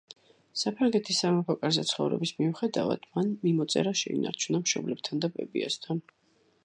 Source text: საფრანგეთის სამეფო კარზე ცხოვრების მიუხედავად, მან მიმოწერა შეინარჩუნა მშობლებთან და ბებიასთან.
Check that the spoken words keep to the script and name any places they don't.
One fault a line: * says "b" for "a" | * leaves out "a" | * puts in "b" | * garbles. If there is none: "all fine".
all fine